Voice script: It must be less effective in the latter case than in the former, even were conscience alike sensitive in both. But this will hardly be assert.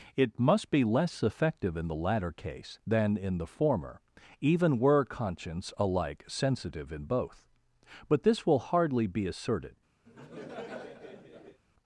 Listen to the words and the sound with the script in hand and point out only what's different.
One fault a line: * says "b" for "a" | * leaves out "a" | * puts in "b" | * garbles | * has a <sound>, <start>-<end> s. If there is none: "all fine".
* says "asserted" for "assert"
* has a laugh, 10.0-11.6 s